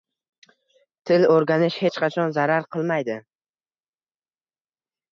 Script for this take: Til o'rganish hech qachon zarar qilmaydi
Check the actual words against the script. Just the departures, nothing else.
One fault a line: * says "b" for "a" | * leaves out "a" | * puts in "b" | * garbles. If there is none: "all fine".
all fine